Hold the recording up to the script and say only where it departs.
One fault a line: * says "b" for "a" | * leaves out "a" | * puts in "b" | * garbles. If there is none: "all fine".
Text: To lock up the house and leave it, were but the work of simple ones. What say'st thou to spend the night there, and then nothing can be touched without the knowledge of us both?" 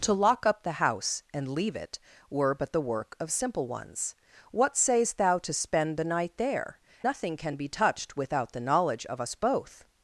* leaves out "and then"